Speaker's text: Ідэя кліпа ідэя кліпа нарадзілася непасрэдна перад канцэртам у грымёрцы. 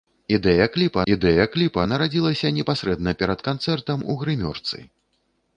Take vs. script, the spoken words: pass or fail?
pass